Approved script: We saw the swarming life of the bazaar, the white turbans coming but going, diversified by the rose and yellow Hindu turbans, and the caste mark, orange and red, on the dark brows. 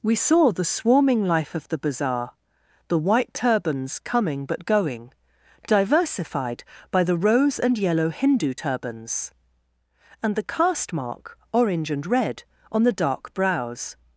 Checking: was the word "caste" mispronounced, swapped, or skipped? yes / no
no